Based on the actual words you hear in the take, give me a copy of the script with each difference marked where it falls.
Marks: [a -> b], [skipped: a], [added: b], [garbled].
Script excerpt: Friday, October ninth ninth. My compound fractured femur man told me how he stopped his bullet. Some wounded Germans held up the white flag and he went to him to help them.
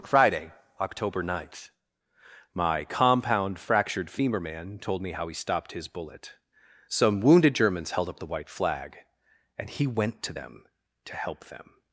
Friday, October ninth [skipped: ninth.] My compound fractured femur man told me how he stopped his bullet. Some wounded Germans held up the white flag and he went to [him -> them] to help them.